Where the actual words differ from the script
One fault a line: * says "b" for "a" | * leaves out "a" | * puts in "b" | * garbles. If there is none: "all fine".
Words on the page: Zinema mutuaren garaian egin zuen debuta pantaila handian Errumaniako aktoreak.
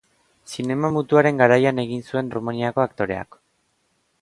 * leaves out "debuta pantaila handian"